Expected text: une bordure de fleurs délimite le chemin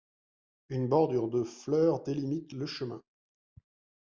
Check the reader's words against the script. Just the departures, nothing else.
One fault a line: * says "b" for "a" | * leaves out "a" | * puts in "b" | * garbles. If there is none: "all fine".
all fine